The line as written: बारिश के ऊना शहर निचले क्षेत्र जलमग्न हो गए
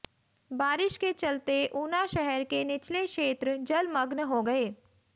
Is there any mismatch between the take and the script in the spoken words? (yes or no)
yes